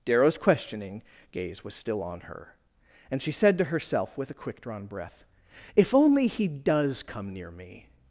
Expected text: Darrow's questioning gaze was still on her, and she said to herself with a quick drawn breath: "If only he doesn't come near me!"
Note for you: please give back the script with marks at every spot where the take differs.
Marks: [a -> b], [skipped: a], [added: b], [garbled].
Darrow's questioning gaze was still on her, and she said to herself with a quick drawn breath: "If only he [doesn't -> does] come near me!"